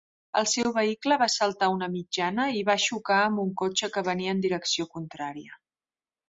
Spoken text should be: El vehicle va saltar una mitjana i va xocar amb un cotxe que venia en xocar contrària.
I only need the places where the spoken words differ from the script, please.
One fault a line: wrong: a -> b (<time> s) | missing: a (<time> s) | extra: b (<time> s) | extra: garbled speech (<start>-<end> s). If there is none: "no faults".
extra: seu (0.5 s)
wrong: xocar -> direcció (4.5 s)